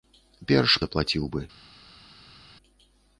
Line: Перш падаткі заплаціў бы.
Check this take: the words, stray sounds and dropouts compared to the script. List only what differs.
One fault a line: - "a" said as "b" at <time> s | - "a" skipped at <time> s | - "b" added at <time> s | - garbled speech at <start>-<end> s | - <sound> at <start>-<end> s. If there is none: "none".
- "падаткі" skipped at 0.8 s